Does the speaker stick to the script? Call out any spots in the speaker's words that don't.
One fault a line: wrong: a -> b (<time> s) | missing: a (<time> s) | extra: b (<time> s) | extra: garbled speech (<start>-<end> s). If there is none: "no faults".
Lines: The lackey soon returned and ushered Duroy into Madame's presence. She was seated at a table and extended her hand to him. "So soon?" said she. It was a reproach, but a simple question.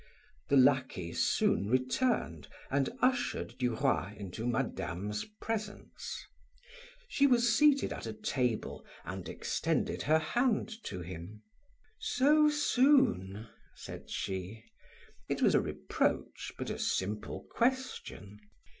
no faults